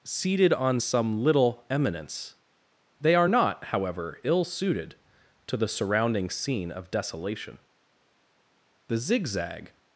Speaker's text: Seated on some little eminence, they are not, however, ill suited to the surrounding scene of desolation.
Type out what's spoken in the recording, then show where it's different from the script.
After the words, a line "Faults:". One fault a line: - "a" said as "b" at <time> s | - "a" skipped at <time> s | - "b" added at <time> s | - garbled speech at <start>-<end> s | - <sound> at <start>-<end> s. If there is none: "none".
Seated on some little eminence, they are not, however, ill suited to the surrounding scene of desolation. The zigzag
Faults:
- "The zigzag" added at 8.9 s